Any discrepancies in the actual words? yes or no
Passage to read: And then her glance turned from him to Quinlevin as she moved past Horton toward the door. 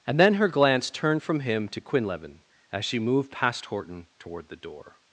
no